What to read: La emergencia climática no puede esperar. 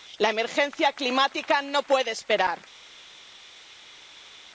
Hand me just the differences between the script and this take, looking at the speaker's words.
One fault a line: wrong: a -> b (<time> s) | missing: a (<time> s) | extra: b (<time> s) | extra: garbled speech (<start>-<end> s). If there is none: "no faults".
no faults